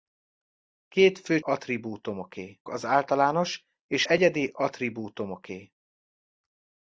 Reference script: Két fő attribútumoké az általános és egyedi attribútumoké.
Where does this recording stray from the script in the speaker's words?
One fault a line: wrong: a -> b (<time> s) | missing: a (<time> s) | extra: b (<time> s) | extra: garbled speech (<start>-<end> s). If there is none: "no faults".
no faults